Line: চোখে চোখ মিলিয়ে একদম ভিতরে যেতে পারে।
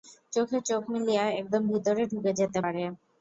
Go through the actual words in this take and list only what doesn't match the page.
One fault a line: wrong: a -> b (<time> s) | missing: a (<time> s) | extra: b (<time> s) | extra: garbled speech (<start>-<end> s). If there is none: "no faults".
extra: ঢুকে (2.1 s)